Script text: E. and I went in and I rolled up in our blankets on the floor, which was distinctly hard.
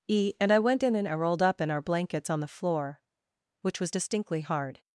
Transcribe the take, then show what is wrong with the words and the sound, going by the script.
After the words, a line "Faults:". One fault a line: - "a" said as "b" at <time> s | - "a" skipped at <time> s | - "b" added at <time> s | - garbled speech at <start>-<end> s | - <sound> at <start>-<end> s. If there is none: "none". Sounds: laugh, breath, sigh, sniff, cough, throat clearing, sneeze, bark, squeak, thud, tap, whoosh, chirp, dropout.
E. and I went in and I rolled up in our blankets on the floor, which was distinctly hard.
Faults:
none